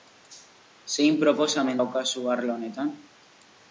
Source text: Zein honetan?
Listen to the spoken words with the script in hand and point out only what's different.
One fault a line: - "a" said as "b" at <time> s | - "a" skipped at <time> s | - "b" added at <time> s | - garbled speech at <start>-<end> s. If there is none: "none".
- "proposamen daukazu arlo" added at 1.2 s